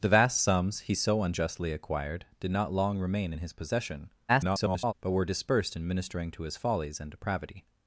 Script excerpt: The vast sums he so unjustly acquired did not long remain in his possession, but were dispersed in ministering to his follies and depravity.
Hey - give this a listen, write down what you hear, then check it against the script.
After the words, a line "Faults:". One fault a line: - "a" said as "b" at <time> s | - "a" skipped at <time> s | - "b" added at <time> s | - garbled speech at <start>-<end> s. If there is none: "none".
The vast sums he so unjustly acquired did not long remain in his possession, [garbled] but were dispersed in ministering to his follies and depravity.
Faults:
- garbled speech at 4.3-4.9 s